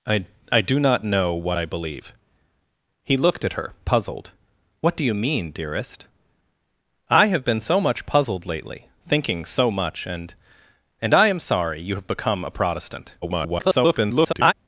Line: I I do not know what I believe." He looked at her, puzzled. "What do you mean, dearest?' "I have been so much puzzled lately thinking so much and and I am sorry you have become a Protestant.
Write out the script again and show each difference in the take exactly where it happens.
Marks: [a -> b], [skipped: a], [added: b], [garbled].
I I do not know what I believe." He looked at her, puzzled. "What do you mean, dearest?' "I have been so much puzzled lately thinking so much and and I am sorry you have become a Protestant. [garbled]